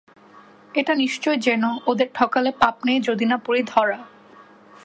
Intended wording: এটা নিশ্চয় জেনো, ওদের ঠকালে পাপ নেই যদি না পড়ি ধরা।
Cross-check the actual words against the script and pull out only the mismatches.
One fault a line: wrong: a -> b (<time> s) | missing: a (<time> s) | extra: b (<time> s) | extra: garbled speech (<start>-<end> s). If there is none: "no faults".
no faults